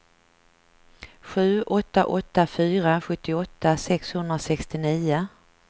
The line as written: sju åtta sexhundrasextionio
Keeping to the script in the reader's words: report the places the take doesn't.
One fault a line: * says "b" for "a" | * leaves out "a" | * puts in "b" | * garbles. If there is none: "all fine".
* puts in "åtta fyra sjuttioåtta"